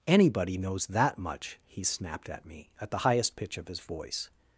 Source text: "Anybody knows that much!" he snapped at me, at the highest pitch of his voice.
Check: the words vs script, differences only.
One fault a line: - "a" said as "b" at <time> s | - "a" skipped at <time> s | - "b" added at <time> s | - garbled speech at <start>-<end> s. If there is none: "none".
none